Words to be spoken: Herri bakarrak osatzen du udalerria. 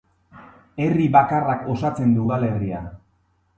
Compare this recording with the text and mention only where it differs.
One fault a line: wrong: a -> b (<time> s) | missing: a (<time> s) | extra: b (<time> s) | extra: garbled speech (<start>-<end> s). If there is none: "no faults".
no faults